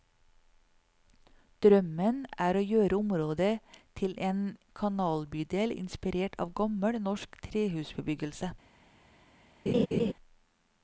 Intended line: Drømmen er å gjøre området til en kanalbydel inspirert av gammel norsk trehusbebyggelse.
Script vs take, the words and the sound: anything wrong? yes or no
yes